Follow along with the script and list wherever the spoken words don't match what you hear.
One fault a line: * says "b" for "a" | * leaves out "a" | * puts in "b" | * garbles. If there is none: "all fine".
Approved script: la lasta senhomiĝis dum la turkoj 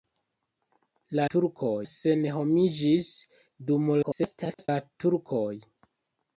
* says "turkoj" for "lasta"
* garbles